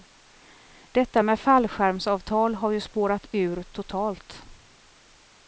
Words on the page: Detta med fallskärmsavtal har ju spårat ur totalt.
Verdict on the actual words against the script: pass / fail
pass